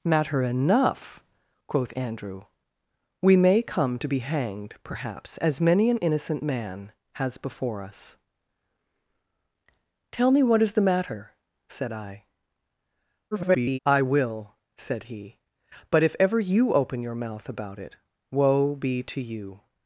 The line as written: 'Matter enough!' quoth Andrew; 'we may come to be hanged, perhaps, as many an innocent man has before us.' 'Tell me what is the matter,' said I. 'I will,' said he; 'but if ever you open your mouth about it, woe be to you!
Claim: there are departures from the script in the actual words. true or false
true